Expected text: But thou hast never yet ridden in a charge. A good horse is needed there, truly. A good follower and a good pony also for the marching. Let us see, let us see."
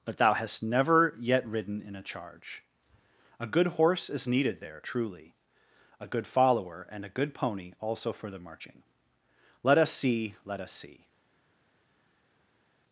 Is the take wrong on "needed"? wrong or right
right